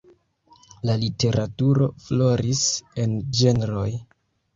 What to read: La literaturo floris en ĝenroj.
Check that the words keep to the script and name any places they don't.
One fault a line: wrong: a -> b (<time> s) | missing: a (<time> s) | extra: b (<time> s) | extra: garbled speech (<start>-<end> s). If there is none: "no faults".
no faults